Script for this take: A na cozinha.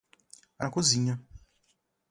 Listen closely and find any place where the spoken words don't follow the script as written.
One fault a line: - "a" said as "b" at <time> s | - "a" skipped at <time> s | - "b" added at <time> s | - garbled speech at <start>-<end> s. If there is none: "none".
none